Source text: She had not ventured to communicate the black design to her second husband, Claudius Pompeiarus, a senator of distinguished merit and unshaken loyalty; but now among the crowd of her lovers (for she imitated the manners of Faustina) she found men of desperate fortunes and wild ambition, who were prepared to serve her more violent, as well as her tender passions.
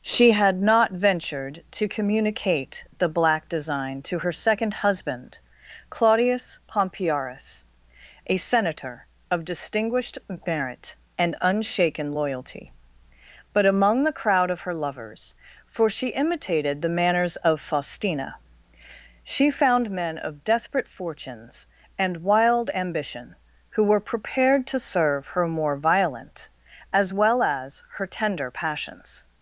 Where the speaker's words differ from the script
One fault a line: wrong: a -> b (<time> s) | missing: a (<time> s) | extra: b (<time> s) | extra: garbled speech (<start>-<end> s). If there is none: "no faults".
missing: now (13.7 s)